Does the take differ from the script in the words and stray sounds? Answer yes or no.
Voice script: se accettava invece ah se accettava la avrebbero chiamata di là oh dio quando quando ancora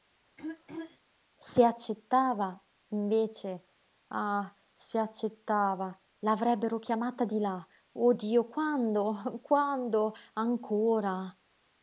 yes